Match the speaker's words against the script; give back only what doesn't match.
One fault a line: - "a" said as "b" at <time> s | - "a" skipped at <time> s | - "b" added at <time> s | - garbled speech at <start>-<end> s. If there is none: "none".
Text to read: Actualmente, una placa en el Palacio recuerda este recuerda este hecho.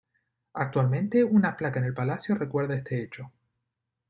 - "recuerda este" skipped at 3.0 s